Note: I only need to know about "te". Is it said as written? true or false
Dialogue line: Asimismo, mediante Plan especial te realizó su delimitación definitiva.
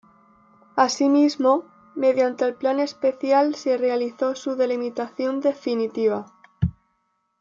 false